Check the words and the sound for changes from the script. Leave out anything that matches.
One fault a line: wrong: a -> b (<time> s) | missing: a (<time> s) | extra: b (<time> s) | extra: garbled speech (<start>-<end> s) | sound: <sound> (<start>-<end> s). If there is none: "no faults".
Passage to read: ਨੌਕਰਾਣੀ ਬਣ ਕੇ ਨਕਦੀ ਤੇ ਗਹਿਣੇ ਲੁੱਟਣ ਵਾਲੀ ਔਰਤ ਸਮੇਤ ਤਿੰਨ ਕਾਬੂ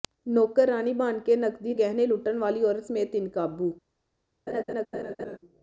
missing: ਤੇ (1.7 s)
sound: laugh (4.5-5.4 s)